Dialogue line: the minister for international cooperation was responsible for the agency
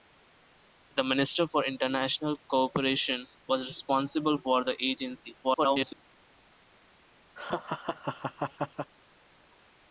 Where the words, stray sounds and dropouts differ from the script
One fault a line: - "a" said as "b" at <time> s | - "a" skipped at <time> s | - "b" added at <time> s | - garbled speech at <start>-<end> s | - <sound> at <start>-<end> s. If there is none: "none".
- garbled speech at 5.4-6.0 s
- laugh at 7.4-8.9 s